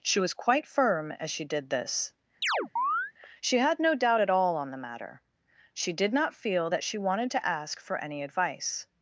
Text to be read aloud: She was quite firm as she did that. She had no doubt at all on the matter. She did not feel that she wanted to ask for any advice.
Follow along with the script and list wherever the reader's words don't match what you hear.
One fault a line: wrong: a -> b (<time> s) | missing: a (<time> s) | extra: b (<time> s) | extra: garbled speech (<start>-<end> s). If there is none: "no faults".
wrong: that -> this (1.7 s)